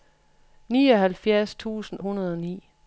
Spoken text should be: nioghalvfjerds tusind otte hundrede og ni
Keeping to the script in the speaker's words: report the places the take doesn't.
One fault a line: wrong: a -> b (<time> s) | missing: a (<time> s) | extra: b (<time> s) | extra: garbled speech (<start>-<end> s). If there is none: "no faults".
missing: otte (2.0 s)